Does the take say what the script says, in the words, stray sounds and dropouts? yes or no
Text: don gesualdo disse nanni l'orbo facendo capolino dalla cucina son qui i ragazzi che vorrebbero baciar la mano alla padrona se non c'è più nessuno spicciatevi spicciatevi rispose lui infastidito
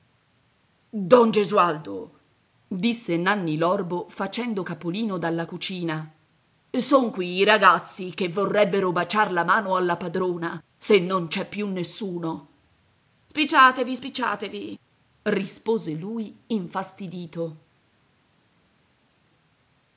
yes